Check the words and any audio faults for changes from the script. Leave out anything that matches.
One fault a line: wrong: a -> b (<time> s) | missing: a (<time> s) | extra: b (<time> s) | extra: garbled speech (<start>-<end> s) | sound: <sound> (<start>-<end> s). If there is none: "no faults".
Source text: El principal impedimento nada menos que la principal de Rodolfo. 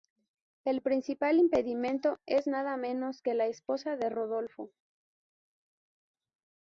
extra: es (2.2 s)
wrong: principal -> esposa (3.5 s)